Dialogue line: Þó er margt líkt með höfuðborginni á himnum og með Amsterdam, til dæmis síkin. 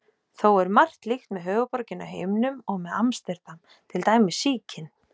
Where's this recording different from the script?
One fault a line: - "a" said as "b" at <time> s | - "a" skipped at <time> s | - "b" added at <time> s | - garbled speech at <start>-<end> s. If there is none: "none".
none